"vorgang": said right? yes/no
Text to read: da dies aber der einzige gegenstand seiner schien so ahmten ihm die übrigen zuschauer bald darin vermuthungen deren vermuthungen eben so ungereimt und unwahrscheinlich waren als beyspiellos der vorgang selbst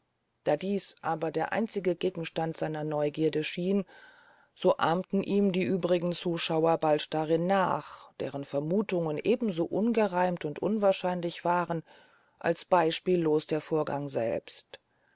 yes